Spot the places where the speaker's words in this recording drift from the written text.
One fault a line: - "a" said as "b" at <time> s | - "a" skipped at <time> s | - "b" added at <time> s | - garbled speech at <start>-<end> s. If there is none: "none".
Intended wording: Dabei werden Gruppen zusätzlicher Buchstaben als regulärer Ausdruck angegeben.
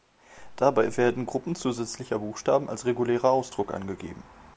none